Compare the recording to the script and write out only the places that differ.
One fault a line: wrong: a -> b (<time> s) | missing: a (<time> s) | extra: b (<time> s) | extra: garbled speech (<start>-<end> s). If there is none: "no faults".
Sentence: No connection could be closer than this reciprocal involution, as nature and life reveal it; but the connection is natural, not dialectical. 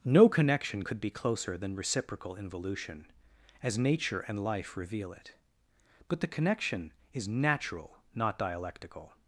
missing: this (1.7 s)